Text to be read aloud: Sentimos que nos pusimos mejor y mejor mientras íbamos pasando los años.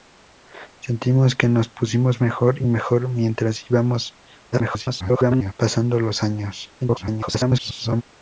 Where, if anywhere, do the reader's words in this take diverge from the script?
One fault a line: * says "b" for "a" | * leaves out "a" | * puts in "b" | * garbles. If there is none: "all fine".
* garbles
* garbles